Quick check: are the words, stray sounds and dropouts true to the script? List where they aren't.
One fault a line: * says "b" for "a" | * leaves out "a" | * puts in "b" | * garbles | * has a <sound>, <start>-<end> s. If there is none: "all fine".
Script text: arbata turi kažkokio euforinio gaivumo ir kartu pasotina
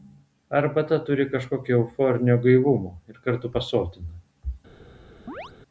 * has a chirp, 5.3-5.5 s